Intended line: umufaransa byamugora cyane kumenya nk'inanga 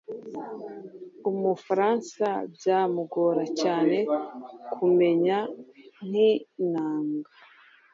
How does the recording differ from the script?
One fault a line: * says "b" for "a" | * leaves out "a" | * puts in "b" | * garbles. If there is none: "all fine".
all fine